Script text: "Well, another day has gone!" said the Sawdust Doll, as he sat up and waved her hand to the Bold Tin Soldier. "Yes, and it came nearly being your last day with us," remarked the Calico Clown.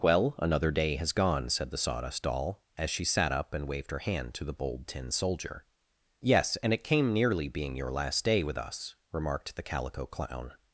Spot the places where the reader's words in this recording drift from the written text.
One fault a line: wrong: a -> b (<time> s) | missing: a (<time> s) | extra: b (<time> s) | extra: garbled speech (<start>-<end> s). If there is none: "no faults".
wrong: he -> she (2.9 s)